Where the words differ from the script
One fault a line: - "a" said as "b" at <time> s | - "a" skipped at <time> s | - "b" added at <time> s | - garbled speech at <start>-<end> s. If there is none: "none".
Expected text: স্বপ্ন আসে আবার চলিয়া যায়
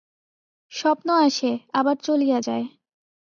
none